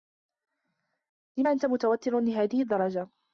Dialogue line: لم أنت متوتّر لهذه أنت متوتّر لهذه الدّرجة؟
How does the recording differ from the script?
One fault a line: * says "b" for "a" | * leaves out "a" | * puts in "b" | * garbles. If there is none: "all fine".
* leaves out "أنت متوتّر لهذه"